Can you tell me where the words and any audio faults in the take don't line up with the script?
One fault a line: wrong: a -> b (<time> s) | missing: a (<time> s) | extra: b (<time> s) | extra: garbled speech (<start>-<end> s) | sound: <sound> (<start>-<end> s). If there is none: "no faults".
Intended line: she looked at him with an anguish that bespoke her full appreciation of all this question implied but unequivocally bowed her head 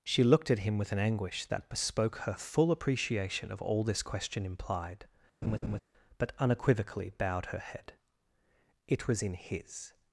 sound: laugh (5.4-5.8 s)
extra: it was in his (8.9 s)